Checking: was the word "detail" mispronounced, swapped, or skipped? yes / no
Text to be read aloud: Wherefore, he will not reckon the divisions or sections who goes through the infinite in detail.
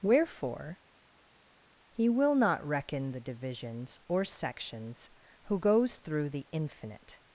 yes